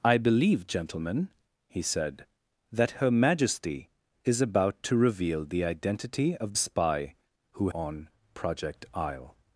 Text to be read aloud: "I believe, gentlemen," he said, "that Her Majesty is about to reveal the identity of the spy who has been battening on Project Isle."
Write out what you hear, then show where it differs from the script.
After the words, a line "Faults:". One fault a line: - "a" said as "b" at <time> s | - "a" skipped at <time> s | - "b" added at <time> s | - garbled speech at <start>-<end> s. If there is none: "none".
"I believe, gentlemen," he said, "that Her Majesty is about to reveal the identity of spy who on Project Isle."
Faults:
- "the" skipped at 6.5 s
- "has been battening" skipped at 7.7 s